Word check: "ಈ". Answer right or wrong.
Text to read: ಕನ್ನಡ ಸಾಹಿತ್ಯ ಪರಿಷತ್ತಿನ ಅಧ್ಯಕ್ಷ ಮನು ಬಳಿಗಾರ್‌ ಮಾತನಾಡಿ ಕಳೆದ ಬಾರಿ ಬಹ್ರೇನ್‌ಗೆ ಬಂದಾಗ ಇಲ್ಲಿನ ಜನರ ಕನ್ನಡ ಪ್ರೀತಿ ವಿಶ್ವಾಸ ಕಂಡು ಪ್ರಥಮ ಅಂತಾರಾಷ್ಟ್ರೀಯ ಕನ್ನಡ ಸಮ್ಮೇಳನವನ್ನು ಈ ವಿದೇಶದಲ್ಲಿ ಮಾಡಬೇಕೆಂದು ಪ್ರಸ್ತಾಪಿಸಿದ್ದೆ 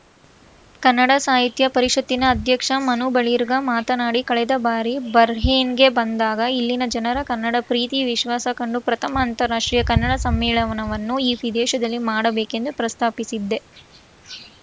right